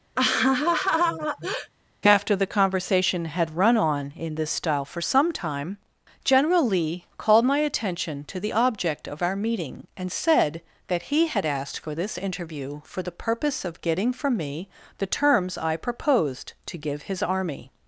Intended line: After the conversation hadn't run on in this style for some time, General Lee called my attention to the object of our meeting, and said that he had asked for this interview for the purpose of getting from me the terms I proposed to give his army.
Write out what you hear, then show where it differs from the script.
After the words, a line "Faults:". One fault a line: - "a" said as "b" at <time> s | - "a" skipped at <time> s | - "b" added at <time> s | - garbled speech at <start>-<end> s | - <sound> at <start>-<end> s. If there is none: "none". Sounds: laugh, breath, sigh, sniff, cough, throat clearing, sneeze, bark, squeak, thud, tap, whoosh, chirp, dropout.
After the conversation had run on in this style for some time, General Lee called my attention to the object of our meeting, and said that he had asked for this interview for the purpose of getting from me the terms I proposed to give his army.
Faults:
- laugh at 0.2-1.7 s
- "hadn't" said as "had" at 3.2 s